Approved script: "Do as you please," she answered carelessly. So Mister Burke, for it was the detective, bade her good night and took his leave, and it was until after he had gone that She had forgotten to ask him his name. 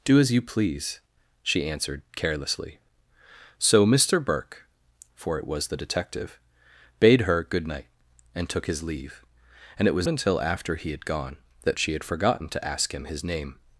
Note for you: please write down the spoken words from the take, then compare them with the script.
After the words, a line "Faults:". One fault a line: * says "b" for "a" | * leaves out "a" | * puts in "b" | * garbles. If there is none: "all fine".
"Do as you please," she answered carelessly. So Mister Burke, for it was the detective, bade her good night and took his leave, and it was until after he had gone that She had forgotten to ask him his name.
Faults:
all fine